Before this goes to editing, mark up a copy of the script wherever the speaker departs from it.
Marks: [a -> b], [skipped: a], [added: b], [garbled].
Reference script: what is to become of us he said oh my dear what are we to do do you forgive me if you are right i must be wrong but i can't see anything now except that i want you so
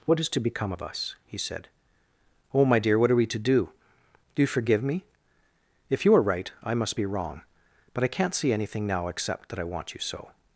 what is to become of us he said oh my dear what are we to do do you forgive me if you are right i must be wrong but i can't see anything now except that i want you so